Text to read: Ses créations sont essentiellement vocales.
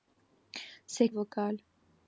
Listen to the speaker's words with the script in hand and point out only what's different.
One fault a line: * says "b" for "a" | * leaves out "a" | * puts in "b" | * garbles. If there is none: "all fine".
* leaves out "créations sont essentiellement"